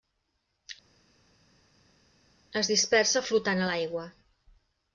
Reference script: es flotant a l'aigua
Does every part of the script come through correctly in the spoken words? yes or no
no